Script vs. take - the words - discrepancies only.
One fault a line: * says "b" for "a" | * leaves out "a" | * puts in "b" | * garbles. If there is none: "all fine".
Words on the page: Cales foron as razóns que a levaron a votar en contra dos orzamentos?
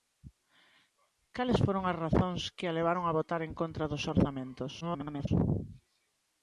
* garbles